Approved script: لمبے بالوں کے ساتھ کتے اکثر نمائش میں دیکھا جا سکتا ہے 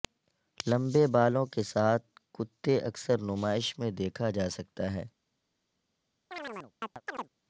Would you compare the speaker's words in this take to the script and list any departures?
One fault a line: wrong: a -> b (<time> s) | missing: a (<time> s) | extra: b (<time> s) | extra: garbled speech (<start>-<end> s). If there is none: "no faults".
no faults